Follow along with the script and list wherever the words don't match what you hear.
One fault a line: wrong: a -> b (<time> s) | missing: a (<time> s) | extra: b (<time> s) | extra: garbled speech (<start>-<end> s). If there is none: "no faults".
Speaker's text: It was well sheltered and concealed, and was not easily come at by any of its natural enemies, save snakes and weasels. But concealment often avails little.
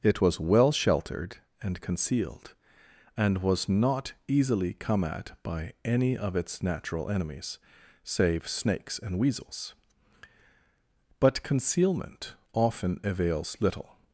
no faults